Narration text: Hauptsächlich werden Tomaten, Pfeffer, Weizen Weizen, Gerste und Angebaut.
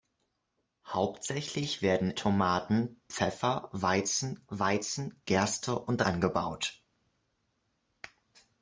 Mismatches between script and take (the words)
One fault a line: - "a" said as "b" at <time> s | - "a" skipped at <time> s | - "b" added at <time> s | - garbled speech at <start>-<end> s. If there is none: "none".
none